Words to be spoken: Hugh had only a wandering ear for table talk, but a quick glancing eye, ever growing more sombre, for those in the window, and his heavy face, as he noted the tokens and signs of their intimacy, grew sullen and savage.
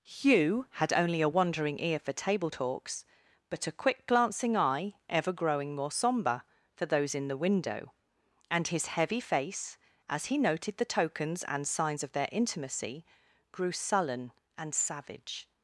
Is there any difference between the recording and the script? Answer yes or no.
yes